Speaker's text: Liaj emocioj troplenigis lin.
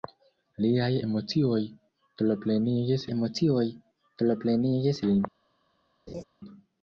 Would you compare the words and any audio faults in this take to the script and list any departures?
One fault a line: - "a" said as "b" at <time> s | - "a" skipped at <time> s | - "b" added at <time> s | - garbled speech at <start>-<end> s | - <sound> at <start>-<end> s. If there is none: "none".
- "emocioj troplenigis" added at 3.1 s
- laugh at 6.1-6.2 s